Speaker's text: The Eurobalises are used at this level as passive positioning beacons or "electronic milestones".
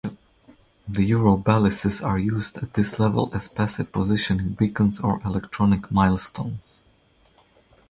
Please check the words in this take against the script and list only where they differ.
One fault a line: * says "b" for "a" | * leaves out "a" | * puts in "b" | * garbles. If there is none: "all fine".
all fine